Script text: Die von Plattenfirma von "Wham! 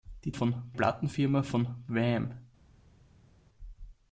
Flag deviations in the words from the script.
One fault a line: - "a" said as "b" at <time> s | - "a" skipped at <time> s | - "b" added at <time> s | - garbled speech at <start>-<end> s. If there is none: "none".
none